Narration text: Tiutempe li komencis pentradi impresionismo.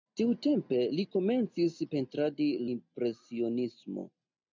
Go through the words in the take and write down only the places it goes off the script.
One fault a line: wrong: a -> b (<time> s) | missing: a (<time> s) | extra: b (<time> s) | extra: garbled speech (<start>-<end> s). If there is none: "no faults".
no faults